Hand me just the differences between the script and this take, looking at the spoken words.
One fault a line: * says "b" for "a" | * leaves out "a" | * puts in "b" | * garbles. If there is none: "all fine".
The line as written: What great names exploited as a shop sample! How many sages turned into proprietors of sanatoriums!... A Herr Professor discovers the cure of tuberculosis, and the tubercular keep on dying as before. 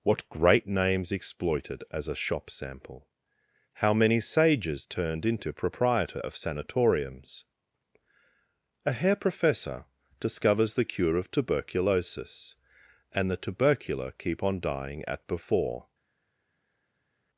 * says "proprietor" for "proprietors"
* says "at" for "as"